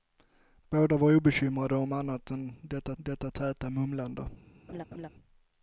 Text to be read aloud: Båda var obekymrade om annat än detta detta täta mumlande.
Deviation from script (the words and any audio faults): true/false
true